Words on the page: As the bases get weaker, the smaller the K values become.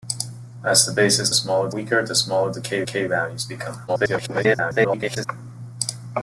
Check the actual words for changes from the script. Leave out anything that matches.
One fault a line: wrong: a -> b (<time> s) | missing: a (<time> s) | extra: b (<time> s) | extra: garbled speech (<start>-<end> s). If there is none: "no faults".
wrong: get -> smaller (1.3 s)
extra: K (2.8 s)
extra: garbled speech (3.9-5.3 s)